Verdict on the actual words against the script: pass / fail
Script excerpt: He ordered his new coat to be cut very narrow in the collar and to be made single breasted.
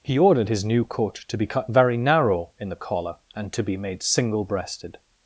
pass